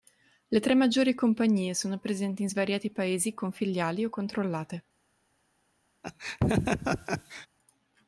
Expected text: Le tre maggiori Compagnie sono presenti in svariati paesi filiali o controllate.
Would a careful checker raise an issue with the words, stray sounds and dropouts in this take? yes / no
yes